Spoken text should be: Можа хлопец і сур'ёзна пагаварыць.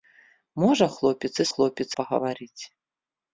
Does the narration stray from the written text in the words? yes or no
yes